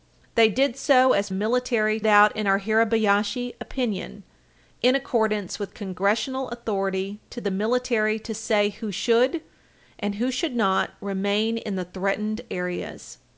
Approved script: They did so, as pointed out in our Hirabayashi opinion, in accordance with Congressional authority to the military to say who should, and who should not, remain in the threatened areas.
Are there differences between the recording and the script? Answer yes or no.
yes